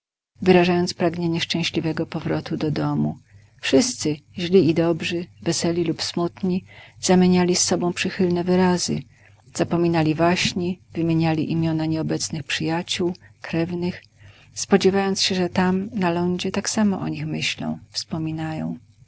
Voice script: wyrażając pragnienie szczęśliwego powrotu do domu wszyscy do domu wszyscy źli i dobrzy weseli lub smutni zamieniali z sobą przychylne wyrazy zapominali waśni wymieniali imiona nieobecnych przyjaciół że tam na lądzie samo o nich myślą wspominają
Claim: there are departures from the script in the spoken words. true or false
true